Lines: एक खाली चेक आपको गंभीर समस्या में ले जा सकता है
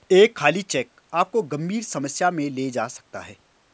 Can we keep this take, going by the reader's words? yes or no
yes